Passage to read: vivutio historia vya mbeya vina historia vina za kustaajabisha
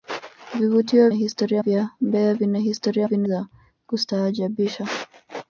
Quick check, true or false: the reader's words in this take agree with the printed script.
true